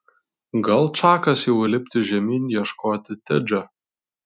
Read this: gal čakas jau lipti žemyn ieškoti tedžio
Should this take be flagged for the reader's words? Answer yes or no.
no